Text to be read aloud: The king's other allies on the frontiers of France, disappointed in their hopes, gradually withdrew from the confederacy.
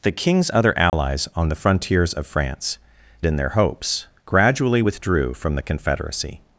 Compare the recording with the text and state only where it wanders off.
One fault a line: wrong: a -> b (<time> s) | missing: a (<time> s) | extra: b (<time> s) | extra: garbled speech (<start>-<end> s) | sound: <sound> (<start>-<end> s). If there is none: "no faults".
sound: dropout (0.9-0.9 s)
missing: disappointed (2.8 s)